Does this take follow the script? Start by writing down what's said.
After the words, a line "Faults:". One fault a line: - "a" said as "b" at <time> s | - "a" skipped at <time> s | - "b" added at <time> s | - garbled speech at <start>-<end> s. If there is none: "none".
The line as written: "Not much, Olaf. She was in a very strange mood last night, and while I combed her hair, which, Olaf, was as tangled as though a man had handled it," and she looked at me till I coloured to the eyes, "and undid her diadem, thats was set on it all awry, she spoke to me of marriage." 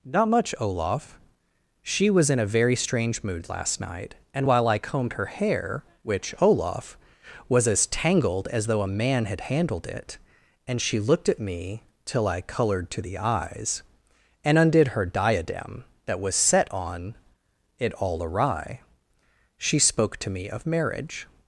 "Not much, Olaf. She was in a very strange mood last night, and while I combed her hair, which, Olaf, was as tangled as though a man had handled it," and she looked at me till I coloured to the eyes, "and undid her diadem, that was set on it all awry, she spoke to me of marriage."
Faults:
- "thats" said as "that" at 16.0 s